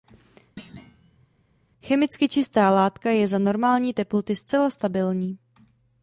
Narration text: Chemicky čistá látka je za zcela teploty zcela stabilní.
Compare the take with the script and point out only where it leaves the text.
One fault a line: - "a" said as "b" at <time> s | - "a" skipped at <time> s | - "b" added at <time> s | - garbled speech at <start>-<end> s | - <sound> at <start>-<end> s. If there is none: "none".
- thud at 0.6-1.3 s
- "zcela" said as "normální" at 3.4 s